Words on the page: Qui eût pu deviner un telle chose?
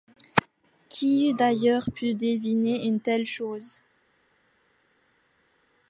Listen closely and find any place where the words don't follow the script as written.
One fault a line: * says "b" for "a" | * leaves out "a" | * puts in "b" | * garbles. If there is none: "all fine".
* puts in "d'ailleurs"
* says "une" for "un"